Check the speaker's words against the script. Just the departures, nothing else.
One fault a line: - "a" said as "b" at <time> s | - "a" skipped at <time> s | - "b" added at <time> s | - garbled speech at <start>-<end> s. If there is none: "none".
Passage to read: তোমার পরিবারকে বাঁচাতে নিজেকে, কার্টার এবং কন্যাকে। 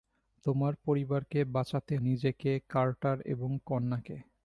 none